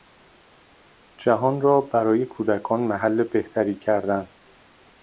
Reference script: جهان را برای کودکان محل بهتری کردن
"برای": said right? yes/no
yes